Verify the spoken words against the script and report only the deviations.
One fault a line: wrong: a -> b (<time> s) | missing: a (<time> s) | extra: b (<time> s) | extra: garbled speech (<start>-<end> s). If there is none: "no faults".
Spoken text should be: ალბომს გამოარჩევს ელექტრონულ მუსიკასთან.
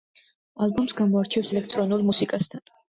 no faults